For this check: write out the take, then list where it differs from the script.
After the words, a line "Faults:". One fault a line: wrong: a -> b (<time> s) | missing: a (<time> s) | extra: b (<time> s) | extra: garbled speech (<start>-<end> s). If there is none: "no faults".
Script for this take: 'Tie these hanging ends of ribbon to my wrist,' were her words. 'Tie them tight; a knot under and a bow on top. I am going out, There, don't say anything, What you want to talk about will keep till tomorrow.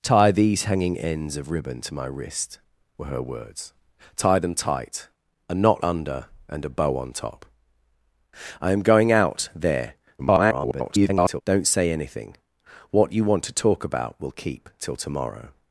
'Tie these hanging ends of ribbon to my wrist,' were her words. 'Tie them tight; a knot under and a bow on top. I am going out, There, [garbled] don't say anything, What you want to talk about will keep till tomorrow.
Faults:
extra: garbled speech (10.2-11.4 s)